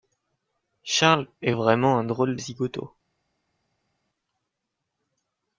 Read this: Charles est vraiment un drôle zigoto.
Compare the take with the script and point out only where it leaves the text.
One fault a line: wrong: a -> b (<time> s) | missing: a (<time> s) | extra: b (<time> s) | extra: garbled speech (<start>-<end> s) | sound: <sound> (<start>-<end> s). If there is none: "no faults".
no faults